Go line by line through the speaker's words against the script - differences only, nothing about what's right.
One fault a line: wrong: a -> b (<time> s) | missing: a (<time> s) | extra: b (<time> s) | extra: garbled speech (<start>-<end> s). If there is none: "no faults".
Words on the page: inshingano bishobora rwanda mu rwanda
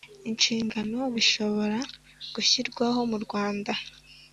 wrong: rwanda -> gushyirwaho (2.3 s)